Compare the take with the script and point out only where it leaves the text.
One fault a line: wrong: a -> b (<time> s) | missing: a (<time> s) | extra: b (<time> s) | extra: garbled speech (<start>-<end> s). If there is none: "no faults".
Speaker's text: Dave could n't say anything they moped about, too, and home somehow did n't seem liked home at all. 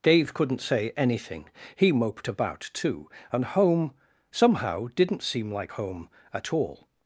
wrong: they -> he (1.7 s)
wrong: liked -> like (5.5 s)